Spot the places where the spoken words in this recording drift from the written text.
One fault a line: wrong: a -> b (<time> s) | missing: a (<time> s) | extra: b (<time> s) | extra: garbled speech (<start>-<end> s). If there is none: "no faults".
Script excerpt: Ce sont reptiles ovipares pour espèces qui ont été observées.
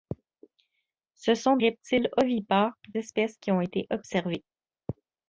no faults